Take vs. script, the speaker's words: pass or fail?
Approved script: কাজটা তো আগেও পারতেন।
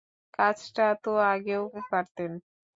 pass